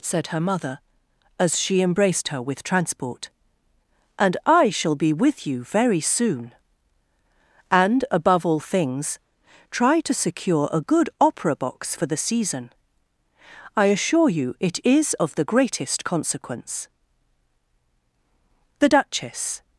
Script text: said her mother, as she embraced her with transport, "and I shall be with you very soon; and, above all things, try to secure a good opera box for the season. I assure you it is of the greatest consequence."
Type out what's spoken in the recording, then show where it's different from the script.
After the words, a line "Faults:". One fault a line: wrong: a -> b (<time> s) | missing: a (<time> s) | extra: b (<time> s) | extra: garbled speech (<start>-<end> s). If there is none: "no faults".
said her mother, as she embraced her with transport, "and I shall be with you very soon; and, above all things, try to secure a good opera box for the season. I assure you it is of the greatest consequence." The Duchess
Faults:
extra: The Duchess (18.8 s)